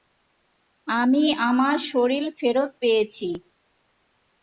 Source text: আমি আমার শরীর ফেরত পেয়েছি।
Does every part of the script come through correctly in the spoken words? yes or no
yes